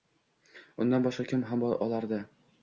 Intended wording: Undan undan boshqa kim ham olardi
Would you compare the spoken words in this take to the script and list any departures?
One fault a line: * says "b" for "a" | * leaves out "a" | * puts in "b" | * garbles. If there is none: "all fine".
* leaves out "undan"